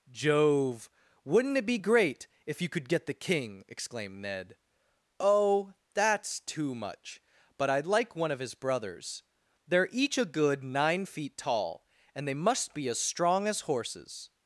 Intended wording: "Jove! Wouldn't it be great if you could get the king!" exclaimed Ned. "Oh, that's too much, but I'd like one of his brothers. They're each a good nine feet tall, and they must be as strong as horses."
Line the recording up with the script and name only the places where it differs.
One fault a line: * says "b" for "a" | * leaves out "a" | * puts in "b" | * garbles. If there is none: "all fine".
all fine